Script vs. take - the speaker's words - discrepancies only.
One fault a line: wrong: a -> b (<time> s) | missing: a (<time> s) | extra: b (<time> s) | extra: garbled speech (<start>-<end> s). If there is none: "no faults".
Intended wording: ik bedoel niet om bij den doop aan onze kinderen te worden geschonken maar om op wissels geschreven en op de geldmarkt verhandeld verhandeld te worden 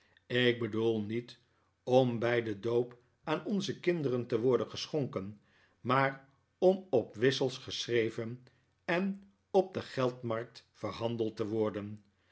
missing: verhandeld (11.4 s)